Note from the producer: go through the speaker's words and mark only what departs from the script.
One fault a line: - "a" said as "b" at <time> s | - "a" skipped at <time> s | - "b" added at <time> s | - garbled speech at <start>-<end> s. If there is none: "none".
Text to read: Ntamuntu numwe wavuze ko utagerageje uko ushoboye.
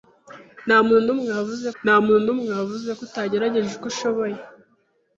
- "ntamuntu numwe wavuze" added at 1.8 s